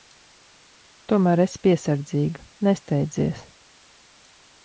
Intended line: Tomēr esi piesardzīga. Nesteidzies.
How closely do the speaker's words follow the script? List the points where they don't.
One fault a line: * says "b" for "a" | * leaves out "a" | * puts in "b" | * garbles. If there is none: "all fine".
all fine